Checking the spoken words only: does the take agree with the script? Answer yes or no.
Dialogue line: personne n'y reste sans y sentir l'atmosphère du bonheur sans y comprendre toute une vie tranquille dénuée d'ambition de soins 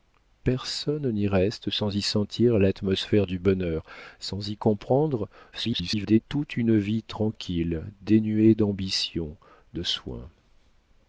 no